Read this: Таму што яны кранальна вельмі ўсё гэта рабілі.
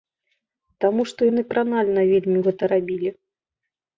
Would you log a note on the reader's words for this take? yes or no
yes